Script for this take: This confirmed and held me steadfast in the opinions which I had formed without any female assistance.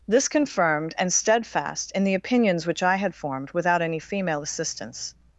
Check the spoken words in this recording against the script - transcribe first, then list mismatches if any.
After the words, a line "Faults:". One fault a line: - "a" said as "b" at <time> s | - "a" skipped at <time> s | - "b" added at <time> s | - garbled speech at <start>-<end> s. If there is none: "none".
This confirmed and steadfast in the opinions which I had formed without any female assistance.
Faults:
- "held me" skipped at 1.1 s